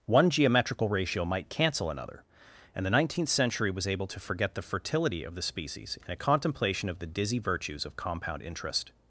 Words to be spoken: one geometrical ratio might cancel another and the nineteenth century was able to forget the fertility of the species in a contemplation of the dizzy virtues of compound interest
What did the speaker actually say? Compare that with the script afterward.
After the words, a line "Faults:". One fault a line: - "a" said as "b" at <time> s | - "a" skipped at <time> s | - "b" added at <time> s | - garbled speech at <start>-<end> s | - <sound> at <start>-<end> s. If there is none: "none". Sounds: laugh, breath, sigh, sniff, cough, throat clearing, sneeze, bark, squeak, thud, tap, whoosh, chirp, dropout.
one geometrical ratio might cancel another and the nineteenth century was able to forget the fertility of the species in a contemplation of the dizzy virtues of compound interest
Faults:
none